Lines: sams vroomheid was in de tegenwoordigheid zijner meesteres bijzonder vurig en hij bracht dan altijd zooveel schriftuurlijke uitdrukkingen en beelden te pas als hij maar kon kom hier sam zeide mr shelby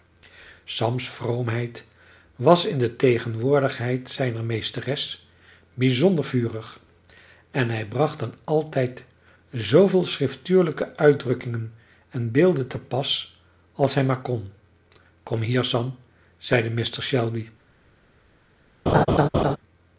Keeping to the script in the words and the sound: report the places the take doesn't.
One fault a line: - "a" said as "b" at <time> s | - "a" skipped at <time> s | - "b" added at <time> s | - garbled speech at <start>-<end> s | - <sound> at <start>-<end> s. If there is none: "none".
- laugh at 18.9-19.6 s